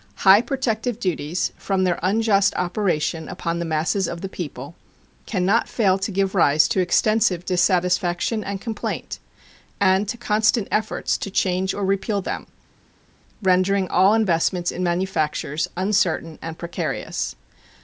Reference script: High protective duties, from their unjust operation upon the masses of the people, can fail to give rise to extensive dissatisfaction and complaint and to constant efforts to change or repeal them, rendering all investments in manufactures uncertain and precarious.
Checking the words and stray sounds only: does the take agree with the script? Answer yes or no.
no